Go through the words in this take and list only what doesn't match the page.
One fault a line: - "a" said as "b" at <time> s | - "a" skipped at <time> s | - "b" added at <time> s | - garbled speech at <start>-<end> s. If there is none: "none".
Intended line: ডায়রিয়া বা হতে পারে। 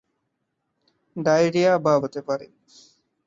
none